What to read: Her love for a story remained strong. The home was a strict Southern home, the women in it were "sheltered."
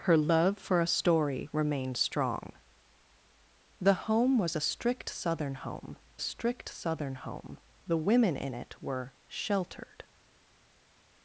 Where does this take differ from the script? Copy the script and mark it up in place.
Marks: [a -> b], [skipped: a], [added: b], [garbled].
Her love for a story remained strong. The home was a strict Southern home, [added: strict Southern home] the women in it were "sheltered."